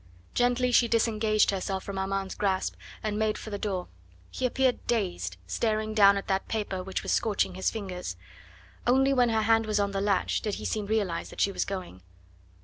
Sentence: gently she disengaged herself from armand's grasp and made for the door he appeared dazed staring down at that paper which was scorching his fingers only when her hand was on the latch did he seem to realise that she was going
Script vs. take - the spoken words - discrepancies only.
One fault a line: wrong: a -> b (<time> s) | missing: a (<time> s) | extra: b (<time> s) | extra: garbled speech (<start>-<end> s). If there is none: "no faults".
missing: to (10.9 s)